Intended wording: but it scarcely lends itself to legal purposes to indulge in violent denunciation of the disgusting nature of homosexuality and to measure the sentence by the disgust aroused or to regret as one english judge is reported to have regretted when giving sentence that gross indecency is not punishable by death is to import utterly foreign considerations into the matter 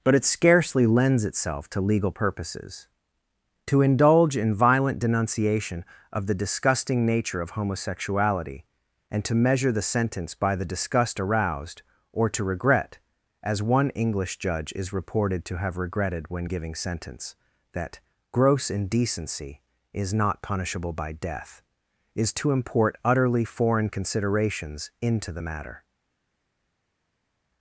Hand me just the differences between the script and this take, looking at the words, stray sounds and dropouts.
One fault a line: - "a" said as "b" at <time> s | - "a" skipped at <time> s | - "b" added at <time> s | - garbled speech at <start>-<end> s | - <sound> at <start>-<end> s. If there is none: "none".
none